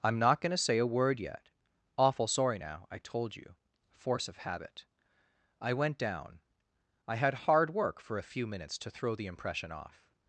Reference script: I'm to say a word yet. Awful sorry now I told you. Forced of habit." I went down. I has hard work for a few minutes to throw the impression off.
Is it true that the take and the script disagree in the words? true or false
true